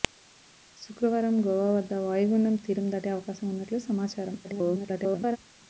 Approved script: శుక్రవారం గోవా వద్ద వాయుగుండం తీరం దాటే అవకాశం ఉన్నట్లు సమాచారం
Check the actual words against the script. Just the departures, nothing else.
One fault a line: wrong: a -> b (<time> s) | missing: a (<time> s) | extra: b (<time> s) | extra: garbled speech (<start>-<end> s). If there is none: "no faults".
extra: garbled speech (4.4-5.4 s)